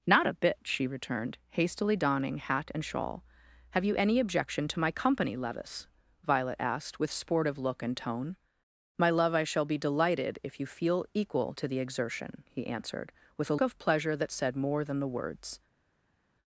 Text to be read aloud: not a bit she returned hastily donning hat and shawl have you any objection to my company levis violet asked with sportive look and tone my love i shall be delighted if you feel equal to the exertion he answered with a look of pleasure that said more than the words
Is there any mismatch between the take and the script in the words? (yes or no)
yes